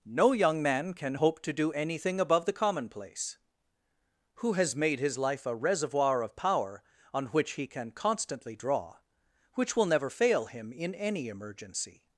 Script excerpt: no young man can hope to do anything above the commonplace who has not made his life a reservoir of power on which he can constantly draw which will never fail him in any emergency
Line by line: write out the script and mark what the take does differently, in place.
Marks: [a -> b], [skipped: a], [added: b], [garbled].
no young man can hope to do anything above the commonplace who has [skipped: not] made his life a reservoir of power on which he can constantly draw which will never fail him in any emergency